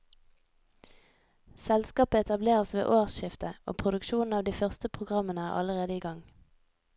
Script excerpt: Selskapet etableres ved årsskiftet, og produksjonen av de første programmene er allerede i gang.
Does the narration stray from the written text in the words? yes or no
no